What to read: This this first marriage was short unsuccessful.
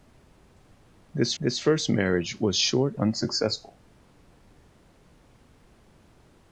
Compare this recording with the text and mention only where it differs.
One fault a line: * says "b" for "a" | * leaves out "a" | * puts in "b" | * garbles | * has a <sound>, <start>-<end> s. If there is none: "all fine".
all fine